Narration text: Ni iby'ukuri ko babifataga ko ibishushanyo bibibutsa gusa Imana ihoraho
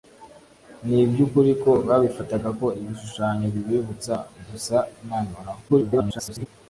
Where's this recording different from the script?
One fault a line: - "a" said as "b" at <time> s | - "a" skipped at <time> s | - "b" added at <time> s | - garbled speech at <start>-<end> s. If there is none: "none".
- garbled speech at 5.7-6.5 s